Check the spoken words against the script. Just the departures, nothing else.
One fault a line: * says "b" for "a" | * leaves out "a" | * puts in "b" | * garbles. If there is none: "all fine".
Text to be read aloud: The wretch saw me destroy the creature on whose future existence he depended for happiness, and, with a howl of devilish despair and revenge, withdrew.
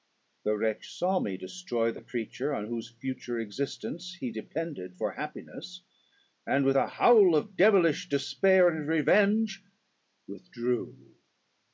all fine